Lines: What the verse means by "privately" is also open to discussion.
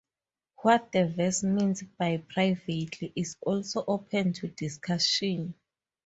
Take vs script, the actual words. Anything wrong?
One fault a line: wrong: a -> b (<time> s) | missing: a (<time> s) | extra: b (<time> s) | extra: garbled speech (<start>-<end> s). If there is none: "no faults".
no faults